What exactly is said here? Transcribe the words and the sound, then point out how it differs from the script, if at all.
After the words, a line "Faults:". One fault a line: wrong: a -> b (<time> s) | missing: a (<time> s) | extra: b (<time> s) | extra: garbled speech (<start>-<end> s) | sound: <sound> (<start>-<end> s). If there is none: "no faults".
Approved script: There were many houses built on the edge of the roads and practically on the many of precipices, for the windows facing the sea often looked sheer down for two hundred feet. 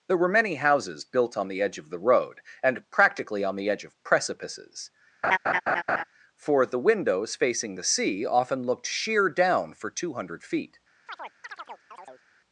There were many houses built on the edge of the road and practically on the edge of precipices, for the windows facing the sea often looked sheer down for two hundred feet.
Faults:
wrong: roads -> road (2.0 s)
wrong: many -> edge (3.7 s)
sound: laugh (5.2-6.0 s)
sound: chirp (11.1-12.2 s)